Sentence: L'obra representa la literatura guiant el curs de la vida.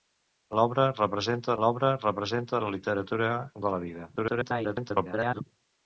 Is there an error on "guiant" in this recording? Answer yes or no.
yes